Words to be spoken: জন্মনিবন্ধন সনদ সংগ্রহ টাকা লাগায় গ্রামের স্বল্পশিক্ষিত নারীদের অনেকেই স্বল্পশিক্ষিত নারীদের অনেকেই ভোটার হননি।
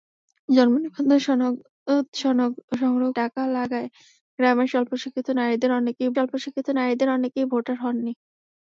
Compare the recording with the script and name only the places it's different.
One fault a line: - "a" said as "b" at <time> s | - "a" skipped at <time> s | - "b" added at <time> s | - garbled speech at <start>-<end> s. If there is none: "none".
none